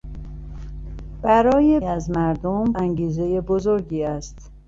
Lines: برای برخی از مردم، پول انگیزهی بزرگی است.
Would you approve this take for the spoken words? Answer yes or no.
no